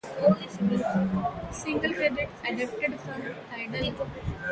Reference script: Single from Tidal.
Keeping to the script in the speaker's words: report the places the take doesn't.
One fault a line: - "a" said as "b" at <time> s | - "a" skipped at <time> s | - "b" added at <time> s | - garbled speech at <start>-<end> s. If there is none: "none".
- "credits adapted" added at 1.9 s